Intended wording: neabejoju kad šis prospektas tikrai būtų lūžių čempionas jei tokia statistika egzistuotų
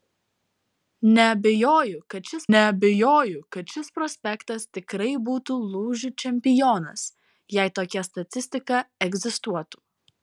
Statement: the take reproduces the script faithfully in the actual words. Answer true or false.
false